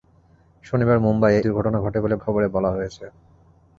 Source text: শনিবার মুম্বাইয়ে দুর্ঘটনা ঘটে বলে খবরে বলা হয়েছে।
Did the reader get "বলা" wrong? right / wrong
right